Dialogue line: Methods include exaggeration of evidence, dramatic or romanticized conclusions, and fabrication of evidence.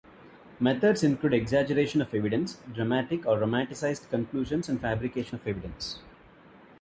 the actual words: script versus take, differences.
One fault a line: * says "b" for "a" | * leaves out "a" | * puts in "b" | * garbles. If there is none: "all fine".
all fine